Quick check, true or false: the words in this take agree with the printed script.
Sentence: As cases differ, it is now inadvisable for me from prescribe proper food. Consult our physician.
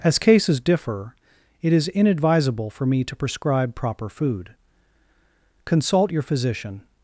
false